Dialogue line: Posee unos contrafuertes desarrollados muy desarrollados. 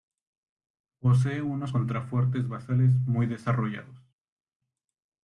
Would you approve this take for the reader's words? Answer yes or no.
no